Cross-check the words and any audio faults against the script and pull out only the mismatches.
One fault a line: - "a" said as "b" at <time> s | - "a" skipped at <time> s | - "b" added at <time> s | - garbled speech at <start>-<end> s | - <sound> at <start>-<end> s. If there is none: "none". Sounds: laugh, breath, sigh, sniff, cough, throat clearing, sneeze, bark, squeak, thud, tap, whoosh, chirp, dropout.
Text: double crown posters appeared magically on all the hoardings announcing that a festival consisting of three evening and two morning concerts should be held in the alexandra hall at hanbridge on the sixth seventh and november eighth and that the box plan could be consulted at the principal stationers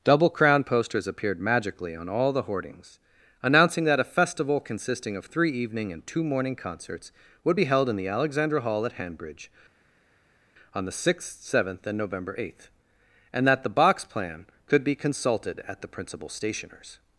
- "should" said as "would" at 7.4 s